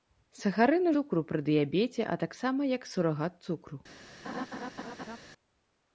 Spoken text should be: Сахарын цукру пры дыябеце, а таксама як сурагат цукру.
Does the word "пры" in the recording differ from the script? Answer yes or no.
no